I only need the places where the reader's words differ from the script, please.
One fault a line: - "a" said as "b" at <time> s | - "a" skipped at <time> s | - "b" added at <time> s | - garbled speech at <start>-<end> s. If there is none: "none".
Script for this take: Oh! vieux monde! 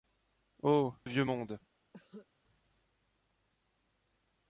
none